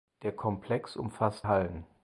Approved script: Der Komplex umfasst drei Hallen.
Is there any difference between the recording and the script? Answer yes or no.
yes